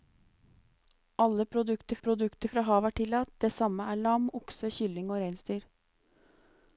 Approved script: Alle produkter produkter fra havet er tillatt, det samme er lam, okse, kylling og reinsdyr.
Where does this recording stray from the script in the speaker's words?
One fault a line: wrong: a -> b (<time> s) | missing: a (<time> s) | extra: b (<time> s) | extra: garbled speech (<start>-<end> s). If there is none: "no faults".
no faults